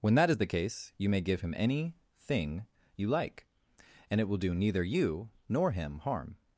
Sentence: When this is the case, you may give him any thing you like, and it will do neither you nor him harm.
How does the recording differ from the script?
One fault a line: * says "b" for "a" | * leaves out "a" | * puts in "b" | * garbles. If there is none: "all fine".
* says "that" for "this"